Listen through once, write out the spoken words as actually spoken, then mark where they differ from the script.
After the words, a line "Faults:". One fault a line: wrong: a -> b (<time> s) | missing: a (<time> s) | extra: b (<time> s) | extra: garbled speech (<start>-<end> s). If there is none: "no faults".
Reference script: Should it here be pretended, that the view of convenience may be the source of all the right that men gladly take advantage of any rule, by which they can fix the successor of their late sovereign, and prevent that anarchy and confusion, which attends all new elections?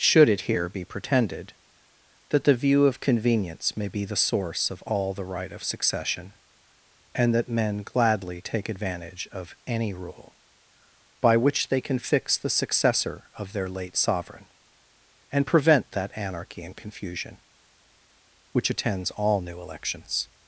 Should it here be pretended, that the view of convenience may be the source of all the right of succession, and that men gladly take advantage of any rule, by which they can fix the successor of their late sovereign, and prevent that anarchy and confusion, which attends all new elections?
Faults:
extra: of succession and (5.5 s)